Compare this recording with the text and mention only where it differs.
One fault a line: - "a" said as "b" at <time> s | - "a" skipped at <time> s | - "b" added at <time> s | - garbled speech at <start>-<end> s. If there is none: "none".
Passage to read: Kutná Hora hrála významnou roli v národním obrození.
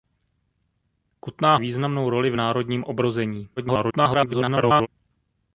- "Hora hrála" skipped at 1.6 s
- garbled speech at 3.6-4.9 s